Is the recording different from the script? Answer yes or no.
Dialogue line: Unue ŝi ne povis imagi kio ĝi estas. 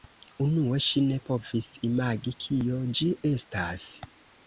no